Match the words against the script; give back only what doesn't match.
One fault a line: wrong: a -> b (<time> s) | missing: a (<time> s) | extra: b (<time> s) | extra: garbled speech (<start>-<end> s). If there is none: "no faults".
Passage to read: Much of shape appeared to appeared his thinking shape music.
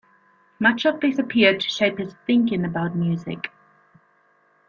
wrong: shape -> this (1.0 s)
wrong: appeared -> shape (1.7 s)
wrong: shape -> about (2.6 s)